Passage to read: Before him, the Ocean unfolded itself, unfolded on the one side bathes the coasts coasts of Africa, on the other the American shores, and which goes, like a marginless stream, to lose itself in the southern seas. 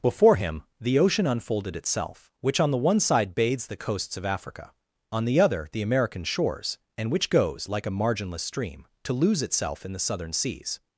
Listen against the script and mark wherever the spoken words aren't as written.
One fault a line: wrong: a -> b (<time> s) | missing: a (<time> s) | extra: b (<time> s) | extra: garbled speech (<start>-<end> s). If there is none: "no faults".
wrong: unfolded -> which (2.4 s)
missing: coasts (4.2 s)